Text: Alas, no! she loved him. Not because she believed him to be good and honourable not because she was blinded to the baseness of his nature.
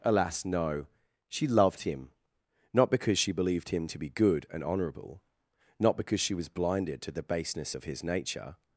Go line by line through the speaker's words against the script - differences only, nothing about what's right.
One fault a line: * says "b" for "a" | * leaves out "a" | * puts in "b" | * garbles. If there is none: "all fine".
all fine